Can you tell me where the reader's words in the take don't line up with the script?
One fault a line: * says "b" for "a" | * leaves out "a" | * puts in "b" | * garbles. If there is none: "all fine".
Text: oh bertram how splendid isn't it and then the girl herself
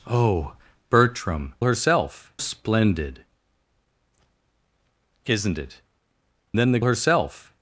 * says "herself" for "how"
* leaves out "and"
* leaves out "girl"